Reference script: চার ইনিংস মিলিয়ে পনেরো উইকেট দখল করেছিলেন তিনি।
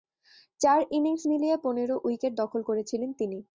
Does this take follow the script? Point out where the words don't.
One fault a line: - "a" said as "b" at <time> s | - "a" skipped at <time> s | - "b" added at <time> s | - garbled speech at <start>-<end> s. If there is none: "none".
none